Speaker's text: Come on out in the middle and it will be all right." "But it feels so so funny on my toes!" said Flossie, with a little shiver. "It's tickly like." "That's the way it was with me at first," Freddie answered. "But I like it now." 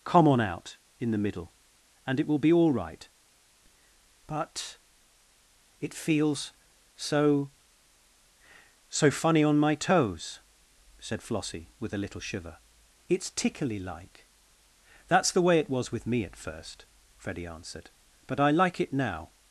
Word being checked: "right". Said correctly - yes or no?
yes